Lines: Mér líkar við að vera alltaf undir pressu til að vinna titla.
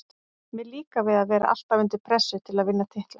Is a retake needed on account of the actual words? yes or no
no